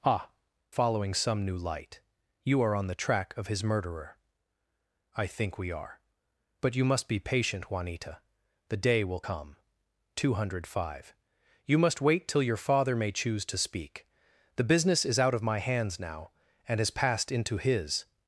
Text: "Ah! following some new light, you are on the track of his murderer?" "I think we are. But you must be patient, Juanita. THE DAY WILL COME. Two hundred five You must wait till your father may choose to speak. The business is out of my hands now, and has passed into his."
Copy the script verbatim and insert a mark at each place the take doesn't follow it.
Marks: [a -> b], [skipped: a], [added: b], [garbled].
"Ah! following some new light, you are on the track of his murderer?" "I think we are. But you must be patient, Juanita. THE DAY WILL COME. Two hundred five You must wait till your father may choose to speak. The business is out of my hands now, and has passed into his."